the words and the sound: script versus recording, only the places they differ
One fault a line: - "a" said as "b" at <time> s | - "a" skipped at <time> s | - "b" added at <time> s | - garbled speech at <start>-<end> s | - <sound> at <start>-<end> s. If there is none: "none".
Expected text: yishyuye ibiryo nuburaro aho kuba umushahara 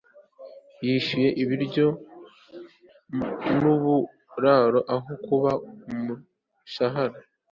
none